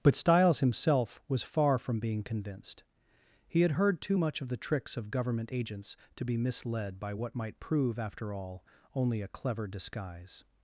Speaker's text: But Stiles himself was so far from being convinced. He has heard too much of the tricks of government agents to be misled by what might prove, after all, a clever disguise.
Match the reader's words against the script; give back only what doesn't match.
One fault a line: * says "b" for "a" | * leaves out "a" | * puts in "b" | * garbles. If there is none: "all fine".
* leaves out "so"
* says "had" for "has"
* puts in "only"